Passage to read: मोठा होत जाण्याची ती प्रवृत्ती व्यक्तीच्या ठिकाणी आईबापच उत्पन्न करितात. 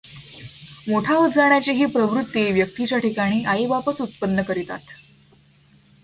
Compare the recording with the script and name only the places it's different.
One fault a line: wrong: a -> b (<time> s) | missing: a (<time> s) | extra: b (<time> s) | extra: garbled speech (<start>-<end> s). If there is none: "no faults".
wrong: ती -> ही (1.7 s)